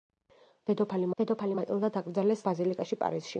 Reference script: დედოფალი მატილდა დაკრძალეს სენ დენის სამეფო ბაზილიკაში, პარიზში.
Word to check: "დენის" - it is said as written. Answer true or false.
false